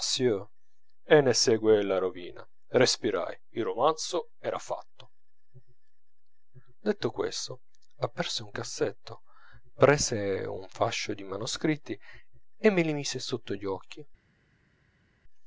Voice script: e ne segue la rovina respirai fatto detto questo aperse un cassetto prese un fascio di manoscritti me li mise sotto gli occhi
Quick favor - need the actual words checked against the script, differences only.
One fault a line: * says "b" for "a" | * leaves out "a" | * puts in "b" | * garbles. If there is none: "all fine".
* puts in "il romanzo era"
* puts in "e"